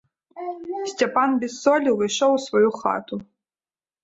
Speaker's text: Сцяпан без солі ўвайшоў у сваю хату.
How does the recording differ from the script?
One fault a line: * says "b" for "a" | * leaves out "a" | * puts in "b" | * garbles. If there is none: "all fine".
all fine